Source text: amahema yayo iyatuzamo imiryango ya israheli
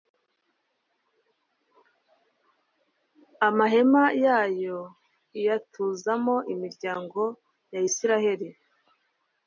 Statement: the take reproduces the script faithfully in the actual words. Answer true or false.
true